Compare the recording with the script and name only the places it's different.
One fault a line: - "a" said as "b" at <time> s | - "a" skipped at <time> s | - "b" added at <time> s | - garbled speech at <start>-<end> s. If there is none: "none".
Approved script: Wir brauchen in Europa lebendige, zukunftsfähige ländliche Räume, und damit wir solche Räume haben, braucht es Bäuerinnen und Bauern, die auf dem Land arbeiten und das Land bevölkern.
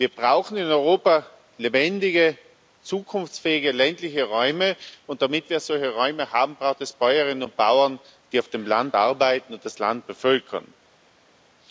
none